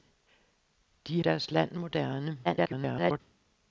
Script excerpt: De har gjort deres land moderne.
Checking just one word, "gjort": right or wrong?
wrong